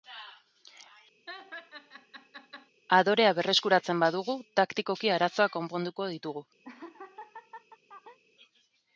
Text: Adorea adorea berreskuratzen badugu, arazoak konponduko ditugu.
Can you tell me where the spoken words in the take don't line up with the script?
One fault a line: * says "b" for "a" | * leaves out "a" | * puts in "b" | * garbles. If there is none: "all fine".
* leaves out "adorea"
* puts in "taktikoki"